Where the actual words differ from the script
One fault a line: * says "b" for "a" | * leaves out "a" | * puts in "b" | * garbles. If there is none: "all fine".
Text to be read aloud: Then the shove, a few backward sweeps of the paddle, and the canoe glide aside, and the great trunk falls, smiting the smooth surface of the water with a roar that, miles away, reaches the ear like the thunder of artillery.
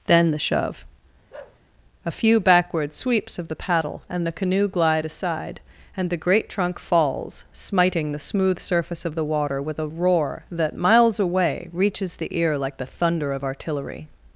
all fine